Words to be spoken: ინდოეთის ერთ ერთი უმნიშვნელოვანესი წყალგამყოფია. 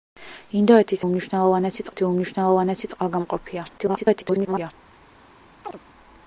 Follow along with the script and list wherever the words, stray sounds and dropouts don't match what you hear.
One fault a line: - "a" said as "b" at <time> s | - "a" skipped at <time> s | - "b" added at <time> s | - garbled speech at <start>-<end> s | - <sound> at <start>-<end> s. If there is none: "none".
- "ერთ" said as "უმნიშვნელოვანესი" at 1.0 s
- garbled speech at 3.8-4.7 s
- chirp at 5.6-5.8 s